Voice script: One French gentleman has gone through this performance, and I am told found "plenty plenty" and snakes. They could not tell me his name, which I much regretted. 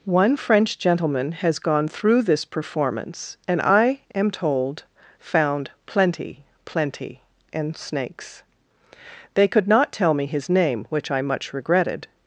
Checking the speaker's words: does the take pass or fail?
pass